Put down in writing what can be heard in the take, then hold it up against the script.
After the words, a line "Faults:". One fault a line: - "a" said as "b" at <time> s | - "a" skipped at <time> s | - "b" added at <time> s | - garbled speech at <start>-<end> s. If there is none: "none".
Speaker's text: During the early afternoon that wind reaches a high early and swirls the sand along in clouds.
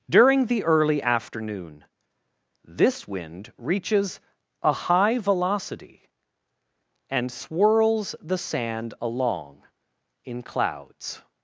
During the early afternoon this wind reaches a high velocity and swirls the sand along in clouds.
Faults:
- "that" said as "this" at 2.6 s
- "early" said as "velocity" at 5.2 s